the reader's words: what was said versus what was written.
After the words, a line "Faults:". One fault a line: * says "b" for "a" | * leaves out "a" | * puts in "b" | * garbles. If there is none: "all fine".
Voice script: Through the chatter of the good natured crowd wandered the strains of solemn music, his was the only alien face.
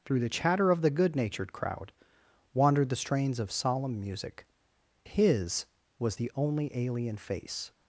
Through the chatter of the good natured crowd wandered the strains of solemn music, his was the only alien face.
Faults:
all fine